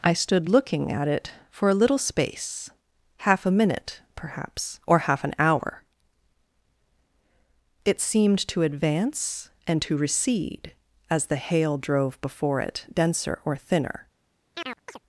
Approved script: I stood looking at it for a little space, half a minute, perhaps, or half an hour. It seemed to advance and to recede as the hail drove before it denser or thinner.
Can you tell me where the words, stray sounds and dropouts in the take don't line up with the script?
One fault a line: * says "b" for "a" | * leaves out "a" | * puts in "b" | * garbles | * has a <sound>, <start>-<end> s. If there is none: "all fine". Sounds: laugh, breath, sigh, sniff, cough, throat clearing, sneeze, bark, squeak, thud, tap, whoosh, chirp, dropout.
* has a chirp, 14.5-15.0 s